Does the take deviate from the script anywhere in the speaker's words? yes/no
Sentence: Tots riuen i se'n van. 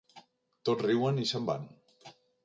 no